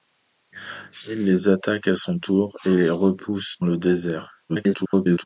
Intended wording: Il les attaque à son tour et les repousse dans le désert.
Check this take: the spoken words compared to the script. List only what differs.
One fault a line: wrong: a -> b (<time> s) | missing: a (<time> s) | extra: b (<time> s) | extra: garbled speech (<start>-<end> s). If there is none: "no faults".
missing: dans (3.6 s)
extra: garbled speech (4.5-5.2 s)